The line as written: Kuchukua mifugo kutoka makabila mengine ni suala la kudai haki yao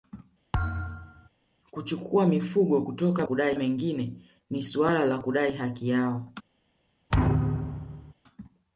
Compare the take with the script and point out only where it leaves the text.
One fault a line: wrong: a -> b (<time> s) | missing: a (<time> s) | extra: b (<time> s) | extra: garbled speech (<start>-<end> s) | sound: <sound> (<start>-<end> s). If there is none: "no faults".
sound: thud (0.5-1.3 s)
wrong: makabila -> kudai (3.2 s)
sound: thud (7.1-8.1 s)